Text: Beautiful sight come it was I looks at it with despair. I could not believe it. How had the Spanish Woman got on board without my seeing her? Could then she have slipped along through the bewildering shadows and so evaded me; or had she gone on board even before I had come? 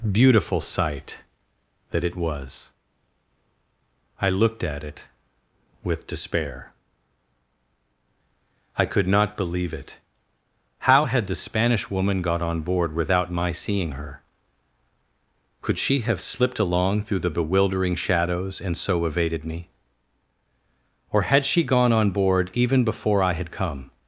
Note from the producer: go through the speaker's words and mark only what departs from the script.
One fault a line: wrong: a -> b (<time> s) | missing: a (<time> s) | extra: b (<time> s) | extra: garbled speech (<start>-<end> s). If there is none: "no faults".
wrong: come -> that (1.9 s)
wrong: looks -> looked (4.3 s)
missing: then (15.8 s)